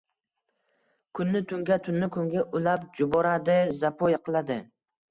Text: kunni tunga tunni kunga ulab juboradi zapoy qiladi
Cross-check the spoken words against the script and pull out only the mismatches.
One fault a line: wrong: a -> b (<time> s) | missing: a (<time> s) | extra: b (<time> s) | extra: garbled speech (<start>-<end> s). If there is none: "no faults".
no faults